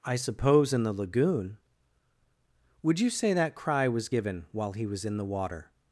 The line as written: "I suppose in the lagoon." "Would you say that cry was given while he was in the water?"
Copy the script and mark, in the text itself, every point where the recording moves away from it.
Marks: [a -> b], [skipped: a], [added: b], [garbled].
"I suppose in the lagoon." "Would you say that cry was given while he was in the water?"